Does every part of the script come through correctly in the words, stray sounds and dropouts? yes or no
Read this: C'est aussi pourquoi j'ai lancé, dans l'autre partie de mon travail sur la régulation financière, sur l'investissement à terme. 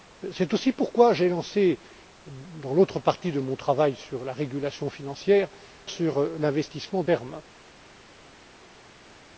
yes